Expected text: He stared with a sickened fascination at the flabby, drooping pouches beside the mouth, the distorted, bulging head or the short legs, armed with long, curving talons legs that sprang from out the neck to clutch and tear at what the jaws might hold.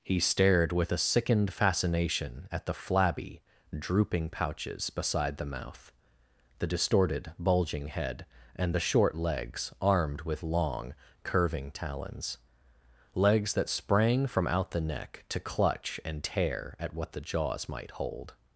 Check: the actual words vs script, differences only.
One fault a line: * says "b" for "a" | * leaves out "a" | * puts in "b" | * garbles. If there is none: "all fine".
* says "and" for "or"